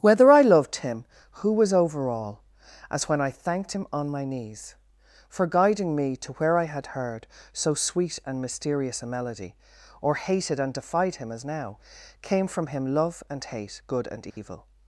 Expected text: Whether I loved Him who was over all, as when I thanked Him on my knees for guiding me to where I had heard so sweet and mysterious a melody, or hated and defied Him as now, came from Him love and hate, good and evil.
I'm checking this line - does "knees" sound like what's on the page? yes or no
yes